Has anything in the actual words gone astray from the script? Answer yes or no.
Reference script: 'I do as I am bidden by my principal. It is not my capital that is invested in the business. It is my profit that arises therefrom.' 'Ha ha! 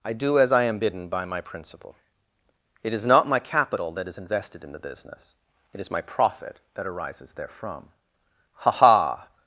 no